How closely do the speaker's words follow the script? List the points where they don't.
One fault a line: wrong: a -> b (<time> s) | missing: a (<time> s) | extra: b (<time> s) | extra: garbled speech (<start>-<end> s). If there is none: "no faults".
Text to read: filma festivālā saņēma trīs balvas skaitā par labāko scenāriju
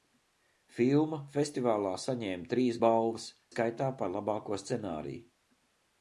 no faults